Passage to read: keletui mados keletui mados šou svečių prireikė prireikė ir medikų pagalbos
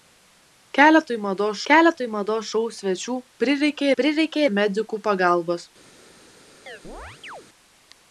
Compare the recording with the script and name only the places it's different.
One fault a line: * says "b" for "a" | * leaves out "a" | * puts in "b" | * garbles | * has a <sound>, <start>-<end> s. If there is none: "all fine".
* has a chirp, 6.7-7.5 s